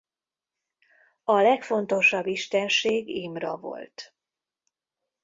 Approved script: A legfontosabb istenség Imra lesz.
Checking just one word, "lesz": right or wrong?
wrong